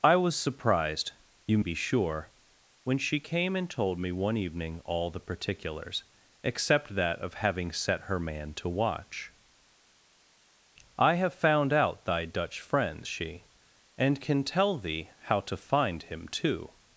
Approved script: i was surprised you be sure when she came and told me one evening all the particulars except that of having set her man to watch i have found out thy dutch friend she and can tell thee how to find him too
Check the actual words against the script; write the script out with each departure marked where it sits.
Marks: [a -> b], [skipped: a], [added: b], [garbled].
i was surprised you be sure when she came and told me one evening all the particulars except that of having set her man to watch i have found out thy dutch friend she and can tell thee how to find him too